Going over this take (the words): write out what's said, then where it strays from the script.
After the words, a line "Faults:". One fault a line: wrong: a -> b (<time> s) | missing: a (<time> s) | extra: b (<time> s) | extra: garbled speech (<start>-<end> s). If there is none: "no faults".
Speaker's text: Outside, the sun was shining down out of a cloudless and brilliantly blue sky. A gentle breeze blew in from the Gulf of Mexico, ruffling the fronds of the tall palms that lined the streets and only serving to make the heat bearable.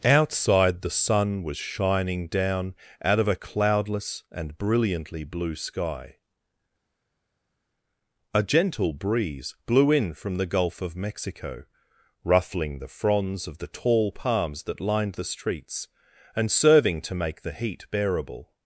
Outside, the sun was shining down out of a cloudless and brilliantly blue sky. A gentle breeze blew in from the Gulf of Mexico, ruffling the fronds of the tall palms that lined the streets and serving to make the heat bearable.
Faults:
missing: only (16.5 s)